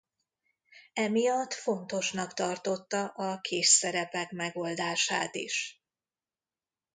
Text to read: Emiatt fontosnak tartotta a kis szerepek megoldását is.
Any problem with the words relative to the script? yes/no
no